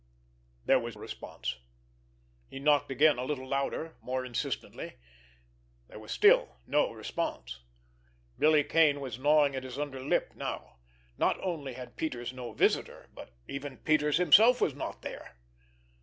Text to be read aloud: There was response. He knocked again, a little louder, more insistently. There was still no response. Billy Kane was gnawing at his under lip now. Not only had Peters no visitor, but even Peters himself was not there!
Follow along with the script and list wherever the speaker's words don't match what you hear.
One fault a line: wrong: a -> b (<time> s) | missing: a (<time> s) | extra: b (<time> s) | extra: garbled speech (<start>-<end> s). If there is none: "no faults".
no faults